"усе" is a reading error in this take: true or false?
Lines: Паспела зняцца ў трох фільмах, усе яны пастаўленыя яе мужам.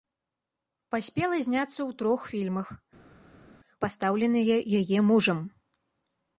true